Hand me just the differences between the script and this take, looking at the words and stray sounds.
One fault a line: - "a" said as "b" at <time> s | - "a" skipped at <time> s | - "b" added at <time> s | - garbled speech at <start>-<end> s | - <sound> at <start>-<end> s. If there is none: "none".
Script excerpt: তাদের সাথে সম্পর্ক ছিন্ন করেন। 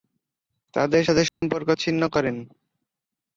- dropout at 1.3-1.4 s